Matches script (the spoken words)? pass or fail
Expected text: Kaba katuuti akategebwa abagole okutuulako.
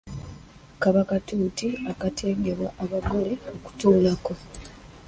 pass